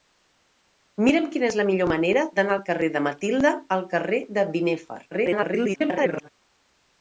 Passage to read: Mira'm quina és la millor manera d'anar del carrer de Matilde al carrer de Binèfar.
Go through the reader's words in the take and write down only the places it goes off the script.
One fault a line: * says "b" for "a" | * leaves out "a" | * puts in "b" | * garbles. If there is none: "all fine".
* garbles